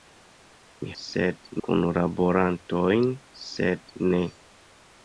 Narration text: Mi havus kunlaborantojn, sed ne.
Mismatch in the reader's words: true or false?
true